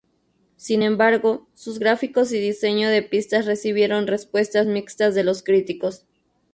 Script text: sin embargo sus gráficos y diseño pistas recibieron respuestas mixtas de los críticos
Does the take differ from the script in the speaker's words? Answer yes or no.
yes